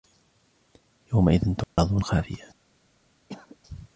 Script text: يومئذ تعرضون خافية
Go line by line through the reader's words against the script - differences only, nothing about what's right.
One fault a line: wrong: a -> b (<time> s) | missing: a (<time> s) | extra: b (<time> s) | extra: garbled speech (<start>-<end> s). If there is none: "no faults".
no faults